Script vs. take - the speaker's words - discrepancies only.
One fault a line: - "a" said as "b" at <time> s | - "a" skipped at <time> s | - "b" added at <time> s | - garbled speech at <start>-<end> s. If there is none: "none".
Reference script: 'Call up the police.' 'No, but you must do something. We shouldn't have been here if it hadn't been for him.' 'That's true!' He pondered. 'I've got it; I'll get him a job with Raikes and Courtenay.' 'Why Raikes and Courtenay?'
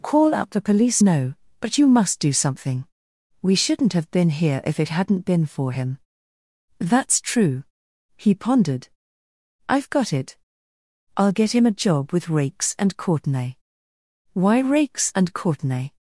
none